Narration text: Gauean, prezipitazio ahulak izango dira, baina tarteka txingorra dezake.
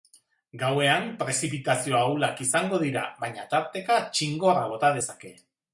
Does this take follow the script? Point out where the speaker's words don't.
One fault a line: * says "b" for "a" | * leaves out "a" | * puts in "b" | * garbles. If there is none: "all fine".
* puts in "bota"